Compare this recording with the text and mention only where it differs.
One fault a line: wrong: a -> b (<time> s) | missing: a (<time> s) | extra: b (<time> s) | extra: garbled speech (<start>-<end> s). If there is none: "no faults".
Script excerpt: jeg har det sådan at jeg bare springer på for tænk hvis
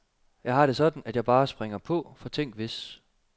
no faults